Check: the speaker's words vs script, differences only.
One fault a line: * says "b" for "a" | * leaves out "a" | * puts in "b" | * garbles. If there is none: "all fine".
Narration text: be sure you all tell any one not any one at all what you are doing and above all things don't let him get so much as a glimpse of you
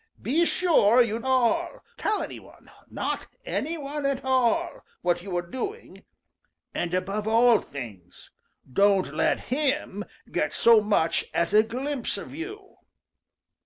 all fine